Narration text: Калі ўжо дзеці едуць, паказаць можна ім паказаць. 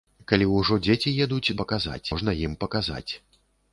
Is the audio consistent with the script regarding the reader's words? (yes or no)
yes